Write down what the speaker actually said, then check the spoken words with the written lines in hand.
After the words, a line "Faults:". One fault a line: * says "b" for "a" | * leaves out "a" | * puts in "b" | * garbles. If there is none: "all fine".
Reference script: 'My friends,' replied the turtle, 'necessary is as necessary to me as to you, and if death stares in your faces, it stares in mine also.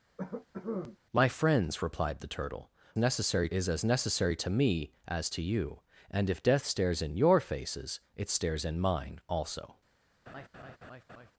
'My friends,' replied the turtle, 'necessary is as necessary to me as to you, and if death stares in your faces, it stares in mine also.
Faults:
all fine